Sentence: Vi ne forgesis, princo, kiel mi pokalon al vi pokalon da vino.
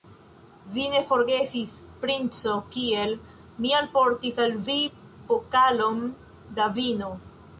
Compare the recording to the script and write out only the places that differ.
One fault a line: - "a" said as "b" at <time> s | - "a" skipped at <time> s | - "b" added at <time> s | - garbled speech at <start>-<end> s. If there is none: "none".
- "pokalon" said as "alportis" at 3.8 s